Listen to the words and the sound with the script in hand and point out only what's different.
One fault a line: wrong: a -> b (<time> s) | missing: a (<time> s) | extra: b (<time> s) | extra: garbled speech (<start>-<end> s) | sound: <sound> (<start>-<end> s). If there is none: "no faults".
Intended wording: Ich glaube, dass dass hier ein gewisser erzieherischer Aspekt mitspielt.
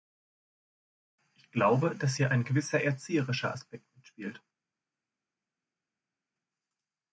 missing: dass (2.1 s)